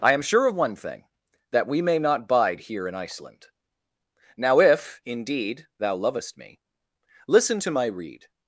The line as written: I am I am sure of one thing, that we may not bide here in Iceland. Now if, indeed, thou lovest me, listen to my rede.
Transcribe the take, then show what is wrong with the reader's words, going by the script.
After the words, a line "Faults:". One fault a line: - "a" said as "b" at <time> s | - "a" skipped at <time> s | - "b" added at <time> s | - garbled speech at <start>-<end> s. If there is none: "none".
I am sure of one thing, that we may not bide here in Iceland. Now if, indeed, thou lovest me, listen to my rede.
Faults:
- "I am" skipped at 0.2 s